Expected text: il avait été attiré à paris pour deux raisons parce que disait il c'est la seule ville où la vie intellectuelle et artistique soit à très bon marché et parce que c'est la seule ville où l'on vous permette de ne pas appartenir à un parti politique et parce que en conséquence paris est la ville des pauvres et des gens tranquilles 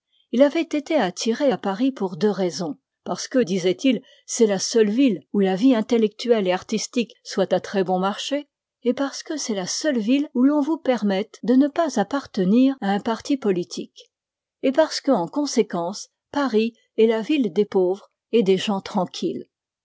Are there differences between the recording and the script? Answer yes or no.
no